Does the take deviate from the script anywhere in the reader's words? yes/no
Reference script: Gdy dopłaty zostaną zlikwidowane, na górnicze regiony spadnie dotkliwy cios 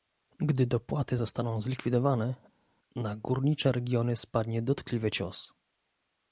no